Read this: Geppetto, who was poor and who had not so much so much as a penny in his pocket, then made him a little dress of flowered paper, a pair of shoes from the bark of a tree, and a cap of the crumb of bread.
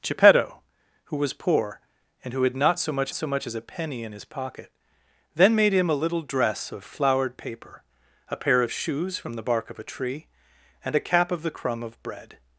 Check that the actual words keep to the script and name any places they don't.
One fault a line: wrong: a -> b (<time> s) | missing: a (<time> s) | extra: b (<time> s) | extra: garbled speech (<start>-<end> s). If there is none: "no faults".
no faults